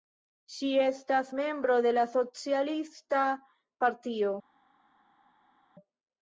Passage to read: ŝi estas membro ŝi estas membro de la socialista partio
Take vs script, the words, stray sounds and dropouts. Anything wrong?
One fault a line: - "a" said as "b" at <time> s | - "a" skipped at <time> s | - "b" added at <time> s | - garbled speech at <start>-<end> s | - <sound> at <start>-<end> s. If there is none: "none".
- "ŝi estas membro" skipped at 1.8 s